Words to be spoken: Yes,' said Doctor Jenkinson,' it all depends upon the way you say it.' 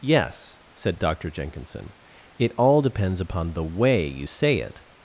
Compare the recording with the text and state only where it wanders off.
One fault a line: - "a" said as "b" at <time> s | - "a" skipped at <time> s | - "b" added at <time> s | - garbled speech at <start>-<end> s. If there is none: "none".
none